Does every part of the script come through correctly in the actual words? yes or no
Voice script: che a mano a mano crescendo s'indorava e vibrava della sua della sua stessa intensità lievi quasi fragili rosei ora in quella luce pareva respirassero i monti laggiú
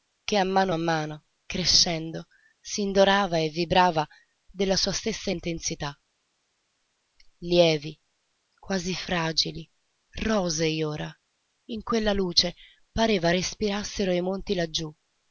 no